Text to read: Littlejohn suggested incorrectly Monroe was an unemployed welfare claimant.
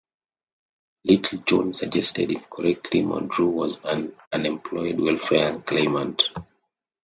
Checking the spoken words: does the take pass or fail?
pass